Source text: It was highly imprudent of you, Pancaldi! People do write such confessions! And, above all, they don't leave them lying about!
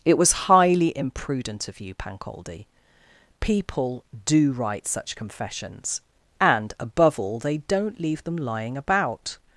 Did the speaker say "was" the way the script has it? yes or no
yes